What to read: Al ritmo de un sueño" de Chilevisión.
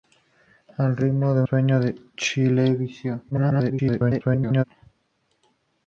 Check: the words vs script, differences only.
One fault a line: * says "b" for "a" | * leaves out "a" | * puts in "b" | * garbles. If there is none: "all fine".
* leaves out "un"
* garbles